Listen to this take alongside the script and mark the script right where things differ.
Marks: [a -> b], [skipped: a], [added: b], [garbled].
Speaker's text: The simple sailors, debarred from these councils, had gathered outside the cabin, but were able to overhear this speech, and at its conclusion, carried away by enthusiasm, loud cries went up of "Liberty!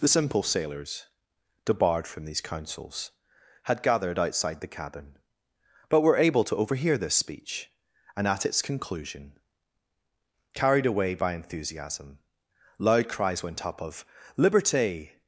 The simple sailors, debarred from these councils, had gathered outside the cabin, but were able to overhear this speech, and at its conclusion, carried away by enthusiasm, loud cries went up of "Liberty!